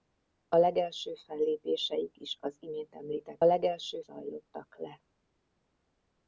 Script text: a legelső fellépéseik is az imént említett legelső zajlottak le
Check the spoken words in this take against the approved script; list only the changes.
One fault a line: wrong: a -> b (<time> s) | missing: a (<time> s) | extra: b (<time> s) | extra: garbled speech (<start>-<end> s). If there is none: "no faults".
no faults